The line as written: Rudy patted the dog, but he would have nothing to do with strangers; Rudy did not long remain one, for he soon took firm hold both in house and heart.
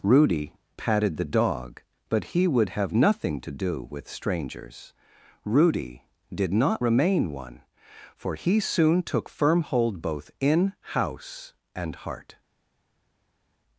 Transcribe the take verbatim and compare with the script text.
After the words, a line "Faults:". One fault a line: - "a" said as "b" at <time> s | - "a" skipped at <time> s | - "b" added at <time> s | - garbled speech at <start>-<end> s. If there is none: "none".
Rudy patted the dog, but he would have nothing to do with strangers; Rudy did not remain one, for he soon took firm hold both in house and heart.
Faults:
- "long" skipped at 6.8 s